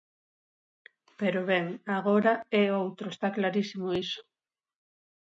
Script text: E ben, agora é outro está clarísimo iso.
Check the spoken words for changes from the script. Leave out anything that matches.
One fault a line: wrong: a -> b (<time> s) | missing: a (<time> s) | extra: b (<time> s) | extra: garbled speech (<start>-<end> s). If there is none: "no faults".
wrong: E -> Pero (1.2 s)